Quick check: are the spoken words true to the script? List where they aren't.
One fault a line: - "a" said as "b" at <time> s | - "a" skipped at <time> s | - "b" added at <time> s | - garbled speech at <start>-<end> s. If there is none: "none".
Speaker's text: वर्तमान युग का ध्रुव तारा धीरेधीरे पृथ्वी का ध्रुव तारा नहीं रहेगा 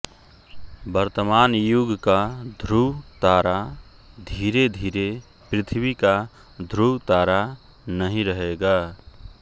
none